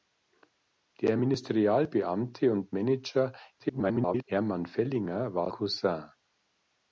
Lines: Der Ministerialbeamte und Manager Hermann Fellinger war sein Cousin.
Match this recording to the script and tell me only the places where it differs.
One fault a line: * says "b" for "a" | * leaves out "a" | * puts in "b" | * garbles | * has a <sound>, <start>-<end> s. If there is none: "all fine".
* garbles
* leaves out "sein"